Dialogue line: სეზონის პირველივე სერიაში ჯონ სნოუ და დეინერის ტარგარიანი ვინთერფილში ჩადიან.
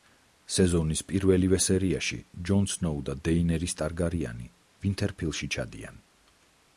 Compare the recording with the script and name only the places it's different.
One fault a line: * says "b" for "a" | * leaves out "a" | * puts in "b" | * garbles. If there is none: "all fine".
all fine